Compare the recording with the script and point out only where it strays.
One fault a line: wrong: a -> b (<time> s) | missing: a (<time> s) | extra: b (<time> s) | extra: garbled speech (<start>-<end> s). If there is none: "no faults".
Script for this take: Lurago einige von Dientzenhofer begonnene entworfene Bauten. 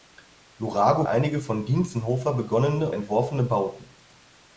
no faults